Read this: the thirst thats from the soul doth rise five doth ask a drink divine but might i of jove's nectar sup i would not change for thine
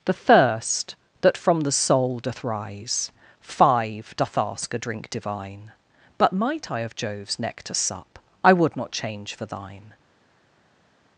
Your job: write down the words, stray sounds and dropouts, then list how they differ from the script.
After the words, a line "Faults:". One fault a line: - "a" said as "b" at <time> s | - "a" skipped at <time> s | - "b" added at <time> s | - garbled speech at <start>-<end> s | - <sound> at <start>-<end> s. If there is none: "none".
the thirst that from the soul doth rise five doth ask a drink divine but might i of jove's nectar sup i would not change for thine
Faults:
- "thats" said as "that" at 1.2 s